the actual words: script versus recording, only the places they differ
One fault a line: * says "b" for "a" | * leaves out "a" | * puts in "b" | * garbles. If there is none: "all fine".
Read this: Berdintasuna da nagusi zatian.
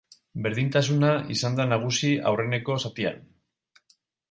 * puts in "izan"
* puts in "aurreneko"